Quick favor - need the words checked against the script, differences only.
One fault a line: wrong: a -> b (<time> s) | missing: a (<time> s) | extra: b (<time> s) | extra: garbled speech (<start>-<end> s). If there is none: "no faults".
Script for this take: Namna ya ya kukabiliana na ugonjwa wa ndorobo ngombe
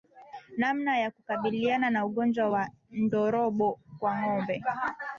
missing: ya (1.1 s)
extra: kwa (4.0 s)